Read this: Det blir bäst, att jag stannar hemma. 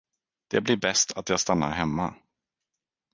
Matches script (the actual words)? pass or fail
pass